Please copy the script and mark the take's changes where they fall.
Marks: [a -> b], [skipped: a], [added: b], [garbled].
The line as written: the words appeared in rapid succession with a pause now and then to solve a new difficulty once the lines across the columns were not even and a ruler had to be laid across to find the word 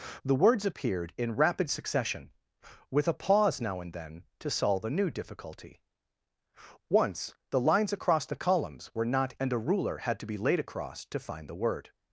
the words appeared in rapid succession with a pause now and then to solve a new difficulty once the lines across the columns were not [skipped: even] and a ruler had to be laid across to find the word